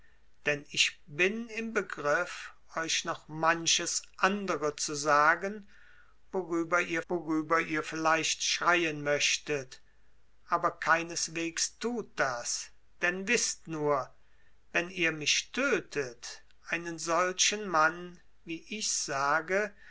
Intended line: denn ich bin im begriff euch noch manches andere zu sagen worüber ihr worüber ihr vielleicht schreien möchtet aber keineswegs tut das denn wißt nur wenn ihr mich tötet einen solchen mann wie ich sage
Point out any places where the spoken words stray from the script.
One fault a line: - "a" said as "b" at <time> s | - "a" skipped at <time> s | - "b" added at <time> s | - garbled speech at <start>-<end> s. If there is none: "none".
none